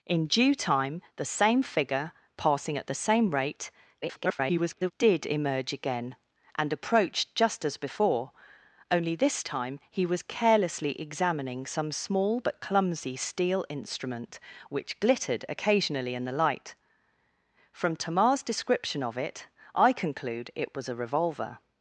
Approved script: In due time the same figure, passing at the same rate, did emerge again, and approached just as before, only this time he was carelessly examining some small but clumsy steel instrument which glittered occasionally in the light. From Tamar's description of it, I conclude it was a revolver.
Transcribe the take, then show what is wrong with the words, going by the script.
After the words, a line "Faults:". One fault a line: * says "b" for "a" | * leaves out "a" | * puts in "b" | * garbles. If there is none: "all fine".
In due time the same figure, passing at the same rate, [garbled] did emerge again, and approached just as before, only this time he was carelessly examining some small but clumsy steel instrument which glittered occasionally in the light. From Tamar's description of it, I conclude it was a revolver.
Faults:
* garbles